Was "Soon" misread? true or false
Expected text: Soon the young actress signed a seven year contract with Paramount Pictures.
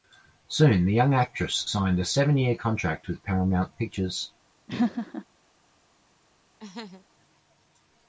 false